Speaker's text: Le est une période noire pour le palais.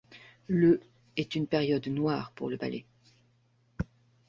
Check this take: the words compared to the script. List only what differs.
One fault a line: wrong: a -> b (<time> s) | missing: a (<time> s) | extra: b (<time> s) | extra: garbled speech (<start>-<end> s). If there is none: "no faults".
no faults